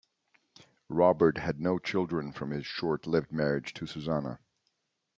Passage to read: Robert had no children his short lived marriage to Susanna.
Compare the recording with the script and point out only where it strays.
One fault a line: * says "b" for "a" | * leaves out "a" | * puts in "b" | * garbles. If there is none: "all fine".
* puts in "from"